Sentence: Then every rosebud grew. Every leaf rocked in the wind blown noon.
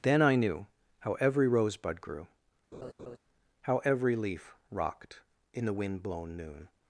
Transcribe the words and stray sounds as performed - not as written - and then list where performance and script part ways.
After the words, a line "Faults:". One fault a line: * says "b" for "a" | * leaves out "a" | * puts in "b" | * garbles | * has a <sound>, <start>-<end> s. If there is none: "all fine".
Then I knew How every rosebud grew. How every leaf rocked in the wind blown noon.
Faults:
* puts in "I knew How"
* has a laugh, 2.7-3.2 s
* puts in "How"